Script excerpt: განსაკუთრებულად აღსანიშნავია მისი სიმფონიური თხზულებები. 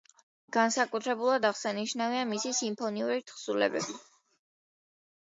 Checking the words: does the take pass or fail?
pass